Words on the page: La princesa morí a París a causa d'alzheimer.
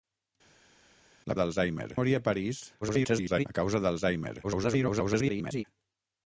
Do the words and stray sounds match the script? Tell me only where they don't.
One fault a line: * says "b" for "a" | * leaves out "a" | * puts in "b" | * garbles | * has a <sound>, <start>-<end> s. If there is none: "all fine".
* says "d'alzheimer" for "princesa"
* garbles
* garbles